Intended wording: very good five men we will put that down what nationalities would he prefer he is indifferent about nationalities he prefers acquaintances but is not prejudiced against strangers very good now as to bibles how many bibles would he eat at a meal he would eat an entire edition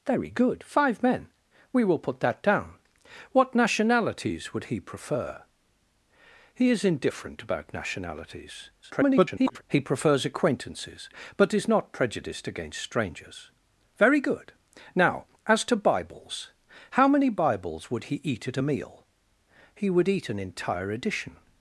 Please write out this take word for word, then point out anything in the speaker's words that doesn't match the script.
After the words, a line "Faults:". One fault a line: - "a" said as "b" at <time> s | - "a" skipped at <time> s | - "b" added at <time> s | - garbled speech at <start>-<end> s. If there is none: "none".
very good five men we will put that down what nationalities would he prefer he is indifferent about nationalities [garbled] he prefers acquaintances but is not prejudiced against strangers very good now as to bibles how many bibles would he eat at a meal he would eat an entire edition
Faults:
- garbled speech at 8.8-9.6 s